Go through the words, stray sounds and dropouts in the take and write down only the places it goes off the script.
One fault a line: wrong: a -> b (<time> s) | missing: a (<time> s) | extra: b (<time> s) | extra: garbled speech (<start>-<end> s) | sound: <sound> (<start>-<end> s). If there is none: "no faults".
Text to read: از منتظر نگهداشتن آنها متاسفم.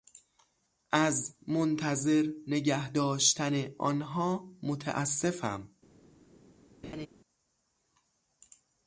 sound: laugh (6.8-7.1 s)